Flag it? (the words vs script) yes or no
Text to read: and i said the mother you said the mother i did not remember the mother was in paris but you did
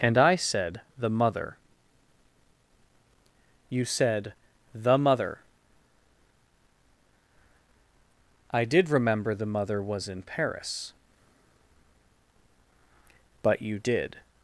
yes